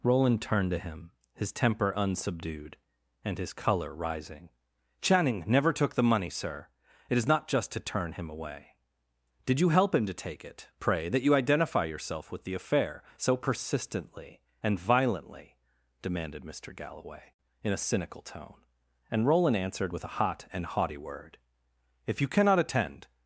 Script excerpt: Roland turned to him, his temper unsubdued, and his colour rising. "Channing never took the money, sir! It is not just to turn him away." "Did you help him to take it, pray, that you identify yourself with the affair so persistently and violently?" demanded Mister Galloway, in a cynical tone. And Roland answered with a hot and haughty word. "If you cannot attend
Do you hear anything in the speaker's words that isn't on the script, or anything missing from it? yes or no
no